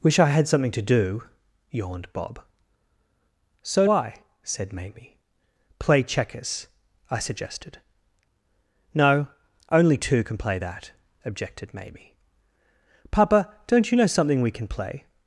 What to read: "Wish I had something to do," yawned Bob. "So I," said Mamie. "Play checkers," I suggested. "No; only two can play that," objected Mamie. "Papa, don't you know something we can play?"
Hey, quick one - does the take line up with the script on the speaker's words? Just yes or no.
yes